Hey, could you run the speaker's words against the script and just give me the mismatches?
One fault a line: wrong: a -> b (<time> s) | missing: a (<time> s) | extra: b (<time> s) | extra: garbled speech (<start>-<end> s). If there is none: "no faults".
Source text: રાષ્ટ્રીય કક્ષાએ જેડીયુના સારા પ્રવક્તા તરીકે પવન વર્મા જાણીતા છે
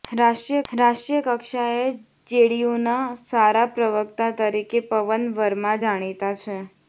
extra: રાષ્ટ્રીય (0.7 s)